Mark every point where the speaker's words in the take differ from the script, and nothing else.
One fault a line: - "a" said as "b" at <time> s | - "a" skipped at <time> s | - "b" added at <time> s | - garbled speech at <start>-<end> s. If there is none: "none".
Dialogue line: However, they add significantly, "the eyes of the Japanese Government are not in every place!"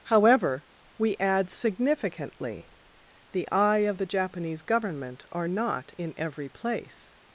- "they" said as "we" at 1.0 s
- "eyes" said as "eye" at 3.5 s